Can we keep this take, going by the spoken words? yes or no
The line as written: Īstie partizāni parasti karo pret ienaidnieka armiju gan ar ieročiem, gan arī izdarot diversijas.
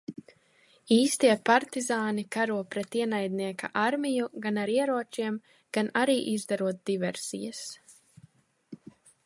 no